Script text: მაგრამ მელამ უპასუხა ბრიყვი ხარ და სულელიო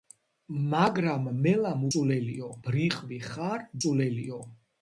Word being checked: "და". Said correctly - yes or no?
no